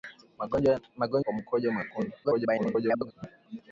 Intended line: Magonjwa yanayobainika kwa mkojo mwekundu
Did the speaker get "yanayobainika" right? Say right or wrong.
wrong